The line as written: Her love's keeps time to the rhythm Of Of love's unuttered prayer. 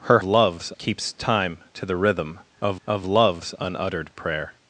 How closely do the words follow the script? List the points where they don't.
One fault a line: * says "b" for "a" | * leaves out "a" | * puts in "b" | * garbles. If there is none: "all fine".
all fine